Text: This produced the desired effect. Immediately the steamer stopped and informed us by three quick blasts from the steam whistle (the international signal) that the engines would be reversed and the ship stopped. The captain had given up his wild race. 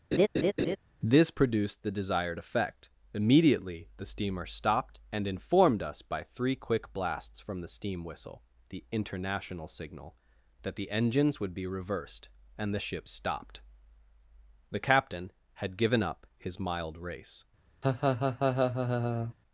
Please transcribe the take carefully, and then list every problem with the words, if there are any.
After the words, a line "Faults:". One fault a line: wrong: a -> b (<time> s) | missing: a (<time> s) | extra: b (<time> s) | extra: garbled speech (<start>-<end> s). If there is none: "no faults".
This produced the desired effect. Immediately the steamer stopped and informed us by three quick blasts from the steam whistle (the international signal) that the engines would be reversed and the ship stopped. The captain had given up his mild race.
Faults:
wrong: wild -> mild (16.6 s)